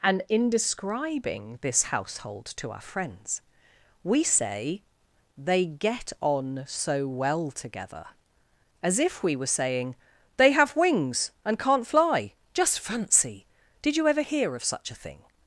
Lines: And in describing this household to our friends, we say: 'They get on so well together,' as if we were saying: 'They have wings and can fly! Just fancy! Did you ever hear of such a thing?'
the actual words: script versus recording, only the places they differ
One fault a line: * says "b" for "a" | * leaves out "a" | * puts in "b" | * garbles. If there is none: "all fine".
* says "can't" for "can"